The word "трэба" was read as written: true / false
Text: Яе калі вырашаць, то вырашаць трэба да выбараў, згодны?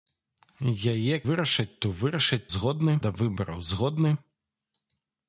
false